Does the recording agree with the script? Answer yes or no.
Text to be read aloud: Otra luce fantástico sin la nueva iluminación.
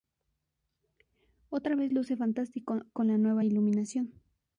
no